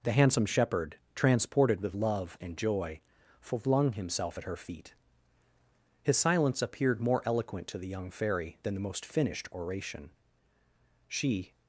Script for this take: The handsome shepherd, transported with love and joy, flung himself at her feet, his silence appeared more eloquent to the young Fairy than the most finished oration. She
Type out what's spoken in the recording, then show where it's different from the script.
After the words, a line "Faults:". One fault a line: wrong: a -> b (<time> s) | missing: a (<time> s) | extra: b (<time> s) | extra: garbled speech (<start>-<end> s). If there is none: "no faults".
The handsome shepherd, transported with love and joy, flung himself at her feet, his silence appeared more eloquent to the young Fairy than the most finished oration. She
Faults:
no faults